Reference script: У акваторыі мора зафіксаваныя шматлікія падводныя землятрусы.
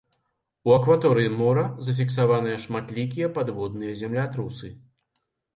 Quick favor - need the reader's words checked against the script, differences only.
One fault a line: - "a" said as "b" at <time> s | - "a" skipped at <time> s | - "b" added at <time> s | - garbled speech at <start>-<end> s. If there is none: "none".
none